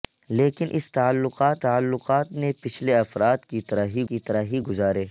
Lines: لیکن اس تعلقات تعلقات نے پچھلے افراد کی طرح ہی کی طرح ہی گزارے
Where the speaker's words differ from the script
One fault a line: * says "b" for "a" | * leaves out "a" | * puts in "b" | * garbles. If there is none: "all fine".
all fine